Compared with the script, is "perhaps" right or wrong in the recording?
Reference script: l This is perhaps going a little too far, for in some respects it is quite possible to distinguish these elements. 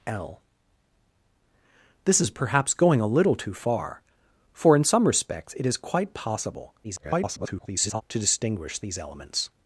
right